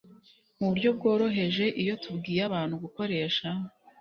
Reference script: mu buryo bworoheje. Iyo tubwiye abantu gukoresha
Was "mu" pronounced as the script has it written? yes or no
yes